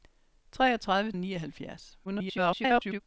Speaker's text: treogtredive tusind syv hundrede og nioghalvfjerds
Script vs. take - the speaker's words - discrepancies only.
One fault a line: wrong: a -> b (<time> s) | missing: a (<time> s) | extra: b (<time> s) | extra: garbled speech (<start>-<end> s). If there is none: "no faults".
missing: tusind syv hundrede (1.1 s)
extra: garbled speech (2.1-3.0 s)